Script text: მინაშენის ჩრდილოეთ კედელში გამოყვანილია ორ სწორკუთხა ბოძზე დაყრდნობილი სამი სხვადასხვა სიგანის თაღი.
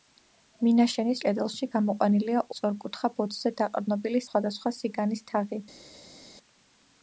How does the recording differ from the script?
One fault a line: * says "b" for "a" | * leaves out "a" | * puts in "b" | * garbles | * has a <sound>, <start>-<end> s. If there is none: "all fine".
* leaves out "ჩრდილოეთ"
* leaves out "ორ"
* leaves out "სამი"